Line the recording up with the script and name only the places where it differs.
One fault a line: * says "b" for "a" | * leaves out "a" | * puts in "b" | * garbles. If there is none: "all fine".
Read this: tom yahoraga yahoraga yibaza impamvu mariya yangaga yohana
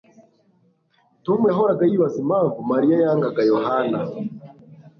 * leaves out "yahoraga"